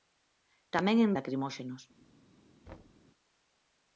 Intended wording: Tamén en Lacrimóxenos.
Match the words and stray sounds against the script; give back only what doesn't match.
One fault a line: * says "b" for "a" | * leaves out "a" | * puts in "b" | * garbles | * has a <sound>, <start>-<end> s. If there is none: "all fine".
* has a thud, 2.7-3.0 s